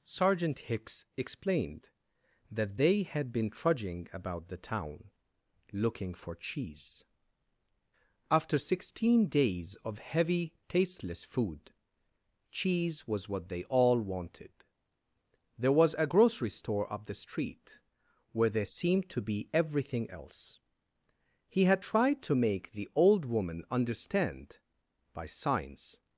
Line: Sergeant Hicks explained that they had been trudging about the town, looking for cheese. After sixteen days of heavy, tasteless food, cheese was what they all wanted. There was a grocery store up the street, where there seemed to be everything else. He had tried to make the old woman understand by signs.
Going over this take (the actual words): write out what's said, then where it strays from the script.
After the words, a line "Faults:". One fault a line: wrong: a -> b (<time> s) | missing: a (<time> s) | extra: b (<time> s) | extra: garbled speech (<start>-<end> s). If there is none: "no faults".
Sergeant Hicks explained that they had been trudging about the town, looking for cheese. After sixteen days of heavy, tasteless food, cheese was what they all wanted. There was a grocery store up the street, where there seemed to be everything else. He had tried to make the old woman understand by signs.
Faults:
no faults